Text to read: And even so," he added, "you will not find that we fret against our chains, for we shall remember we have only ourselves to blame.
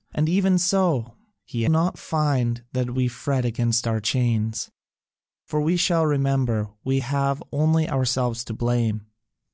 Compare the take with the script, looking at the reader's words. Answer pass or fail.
fail